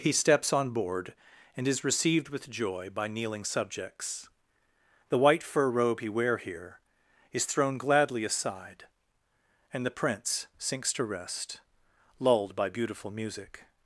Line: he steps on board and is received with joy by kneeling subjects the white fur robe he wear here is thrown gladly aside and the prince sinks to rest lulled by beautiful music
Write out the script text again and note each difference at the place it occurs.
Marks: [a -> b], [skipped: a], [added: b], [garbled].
he steps on board and is received with joy by kneeling subjects the white fur robe he wear here is thrown gladly aside and the prince sinks to rest lulled by beautiful music